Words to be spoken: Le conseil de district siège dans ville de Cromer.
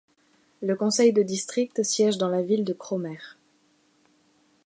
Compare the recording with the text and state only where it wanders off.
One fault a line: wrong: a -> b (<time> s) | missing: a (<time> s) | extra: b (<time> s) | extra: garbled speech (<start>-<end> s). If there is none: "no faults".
extra: la (2.3 s)